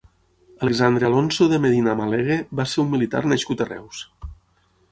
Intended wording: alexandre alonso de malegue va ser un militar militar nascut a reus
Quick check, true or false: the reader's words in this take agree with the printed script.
false